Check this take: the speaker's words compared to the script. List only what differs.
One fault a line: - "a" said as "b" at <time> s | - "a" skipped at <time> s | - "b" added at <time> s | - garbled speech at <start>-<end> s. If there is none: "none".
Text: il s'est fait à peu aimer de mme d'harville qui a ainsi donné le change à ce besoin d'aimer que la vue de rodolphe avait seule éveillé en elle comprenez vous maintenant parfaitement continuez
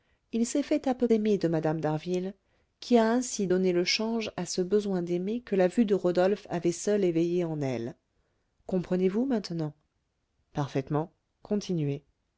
none